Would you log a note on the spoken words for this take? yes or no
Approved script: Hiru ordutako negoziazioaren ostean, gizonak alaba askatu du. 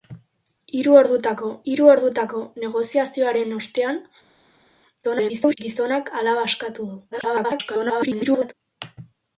yes